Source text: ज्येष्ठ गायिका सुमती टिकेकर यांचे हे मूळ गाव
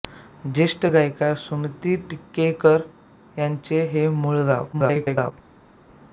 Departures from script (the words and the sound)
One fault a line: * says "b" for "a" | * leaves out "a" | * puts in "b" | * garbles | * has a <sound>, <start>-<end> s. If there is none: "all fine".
* garbles